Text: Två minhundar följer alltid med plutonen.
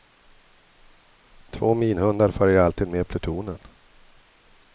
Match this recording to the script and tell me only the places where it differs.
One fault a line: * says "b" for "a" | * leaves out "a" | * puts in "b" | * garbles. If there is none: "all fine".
all fine